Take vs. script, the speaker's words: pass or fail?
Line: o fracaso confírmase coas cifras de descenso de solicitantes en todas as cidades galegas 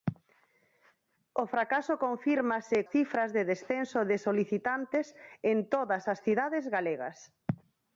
fail